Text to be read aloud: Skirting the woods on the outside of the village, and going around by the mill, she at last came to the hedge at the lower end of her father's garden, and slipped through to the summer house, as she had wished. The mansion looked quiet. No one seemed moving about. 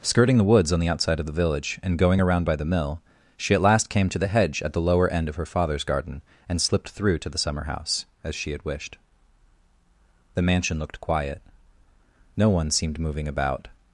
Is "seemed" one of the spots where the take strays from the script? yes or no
no